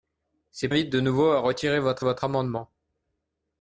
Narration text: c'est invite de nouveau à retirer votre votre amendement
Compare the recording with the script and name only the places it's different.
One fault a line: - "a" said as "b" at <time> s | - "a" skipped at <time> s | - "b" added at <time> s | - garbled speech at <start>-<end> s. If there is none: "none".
none